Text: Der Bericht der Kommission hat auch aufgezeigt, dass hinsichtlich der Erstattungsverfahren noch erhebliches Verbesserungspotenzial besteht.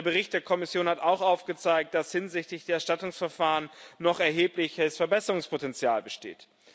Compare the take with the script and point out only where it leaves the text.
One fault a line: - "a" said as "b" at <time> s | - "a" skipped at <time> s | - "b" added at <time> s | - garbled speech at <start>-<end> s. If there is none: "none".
none